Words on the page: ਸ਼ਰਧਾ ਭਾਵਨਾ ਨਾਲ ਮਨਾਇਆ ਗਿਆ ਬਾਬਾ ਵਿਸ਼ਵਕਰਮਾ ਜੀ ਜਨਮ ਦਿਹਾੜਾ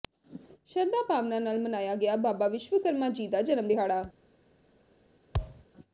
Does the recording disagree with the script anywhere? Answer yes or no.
yes